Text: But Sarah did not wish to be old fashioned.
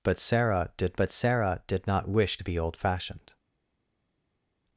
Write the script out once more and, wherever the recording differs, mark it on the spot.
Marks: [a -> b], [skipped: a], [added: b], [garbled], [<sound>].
But Sarah did [added: but Sarah did] not wish to be old fashioned.